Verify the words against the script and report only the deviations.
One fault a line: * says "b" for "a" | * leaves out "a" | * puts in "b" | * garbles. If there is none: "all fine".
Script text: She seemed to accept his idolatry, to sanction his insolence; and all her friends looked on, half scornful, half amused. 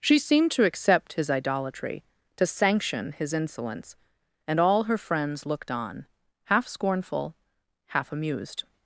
all fine